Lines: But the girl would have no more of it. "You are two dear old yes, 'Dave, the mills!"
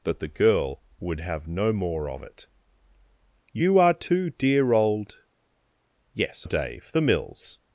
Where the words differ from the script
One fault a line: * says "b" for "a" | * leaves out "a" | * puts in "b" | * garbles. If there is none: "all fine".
all fine